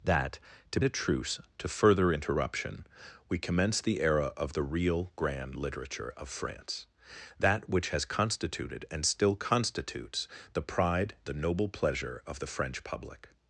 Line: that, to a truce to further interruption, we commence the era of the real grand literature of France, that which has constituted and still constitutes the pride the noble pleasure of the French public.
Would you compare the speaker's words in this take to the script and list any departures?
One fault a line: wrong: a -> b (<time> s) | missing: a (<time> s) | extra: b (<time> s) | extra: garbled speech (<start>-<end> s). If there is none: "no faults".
no faults